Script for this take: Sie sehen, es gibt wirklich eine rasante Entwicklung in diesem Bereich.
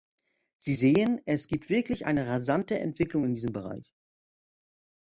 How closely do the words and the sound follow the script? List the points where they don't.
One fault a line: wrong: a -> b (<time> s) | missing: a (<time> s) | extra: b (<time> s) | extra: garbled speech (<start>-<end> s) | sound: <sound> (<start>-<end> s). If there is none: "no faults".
no faults